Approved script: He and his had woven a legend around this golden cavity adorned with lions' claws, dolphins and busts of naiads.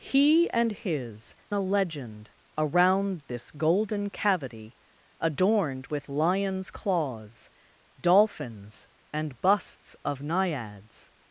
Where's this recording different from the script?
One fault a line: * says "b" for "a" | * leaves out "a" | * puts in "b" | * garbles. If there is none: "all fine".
* leaves out "had woven"